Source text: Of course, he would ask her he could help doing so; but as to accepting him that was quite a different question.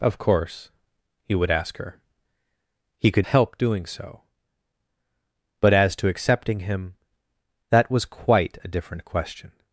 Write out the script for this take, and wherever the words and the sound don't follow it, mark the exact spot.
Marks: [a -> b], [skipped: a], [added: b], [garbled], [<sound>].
Of course, he would ask her he could help doing so; but as to accepting him that was quite a different question.